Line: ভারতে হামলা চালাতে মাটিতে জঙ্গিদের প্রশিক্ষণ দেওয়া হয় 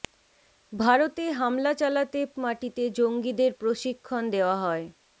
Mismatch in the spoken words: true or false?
false